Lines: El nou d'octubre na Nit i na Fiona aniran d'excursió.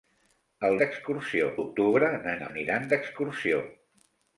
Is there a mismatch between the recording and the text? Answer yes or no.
yes